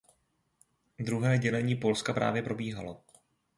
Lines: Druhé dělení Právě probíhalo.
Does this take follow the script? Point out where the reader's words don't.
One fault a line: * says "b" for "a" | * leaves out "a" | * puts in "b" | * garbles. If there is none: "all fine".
* puts in "Polska"